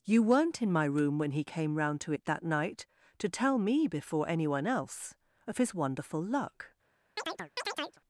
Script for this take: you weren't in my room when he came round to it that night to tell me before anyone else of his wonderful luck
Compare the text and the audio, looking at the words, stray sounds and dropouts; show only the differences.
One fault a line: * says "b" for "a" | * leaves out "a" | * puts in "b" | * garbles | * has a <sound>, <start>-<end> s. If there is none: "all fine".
* has a chirp, 7.2-8.0 s